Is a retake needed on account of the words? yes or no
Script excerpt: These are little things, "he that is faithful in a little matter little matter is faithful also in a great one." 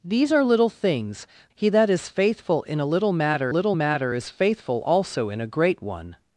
no